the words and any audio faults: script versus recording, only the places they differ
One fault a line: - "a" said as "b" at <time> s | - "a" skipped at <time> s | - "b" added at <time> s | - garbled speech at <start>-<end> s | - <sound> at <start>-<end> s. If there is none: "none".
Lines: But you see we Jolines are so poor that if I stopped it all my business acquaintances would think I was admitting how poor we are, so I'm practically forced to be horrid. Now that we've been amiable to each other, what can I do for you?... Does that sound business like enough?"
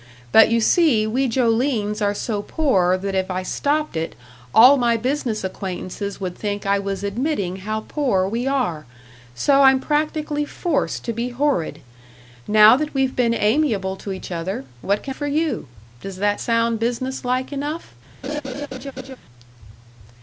- "I do" skipped at 15.2 s
- laugh at 18.2-19.2 s